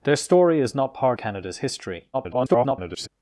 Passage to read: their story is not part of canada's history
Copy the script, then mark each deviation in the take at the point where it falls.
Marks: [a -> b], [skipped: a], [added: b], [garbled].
their story is not part [skipped: of] canada's history [garbled]